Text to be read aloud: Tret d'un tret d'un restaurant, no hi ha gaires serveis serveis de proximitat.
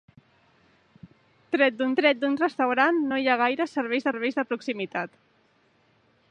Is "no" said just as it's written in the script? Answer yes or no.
yes